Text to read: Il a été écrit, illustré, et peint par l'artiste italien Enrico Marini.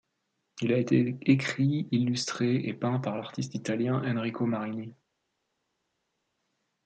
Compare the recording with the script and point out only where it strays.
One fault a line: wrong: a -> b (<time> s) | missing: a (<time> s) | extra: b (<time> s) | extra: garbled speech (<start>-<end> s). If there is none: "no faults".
no faults